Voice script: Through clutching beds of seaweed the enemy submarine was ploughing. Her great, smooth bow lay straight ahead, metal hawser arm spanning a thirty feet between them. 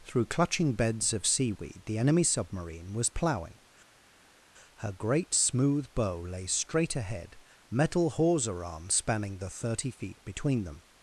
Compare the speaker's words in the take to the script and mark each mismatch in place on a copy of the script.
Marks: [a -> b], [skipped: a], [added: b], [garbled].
Through clutching beds of seaweed the enemy submarine was ploughing. Her great, smooth bow lay straight ahead, metal hawser arm spanning [a -> the] thirty feet between them.